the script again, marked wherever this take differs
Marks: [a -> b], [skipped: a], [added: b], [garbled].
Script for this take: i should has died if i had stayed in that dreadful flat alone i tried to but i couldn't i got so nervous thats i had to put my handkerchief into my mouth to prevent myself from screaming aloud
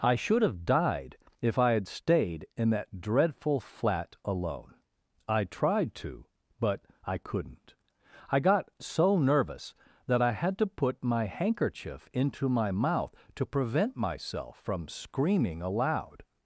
i should [has -> have] died if i had stayed in that dreadful flat alone i tried to but i couldn't i got so nervous [thats -> that] i had to put my handkerchief into my mouth to prevent myself from screaming aloud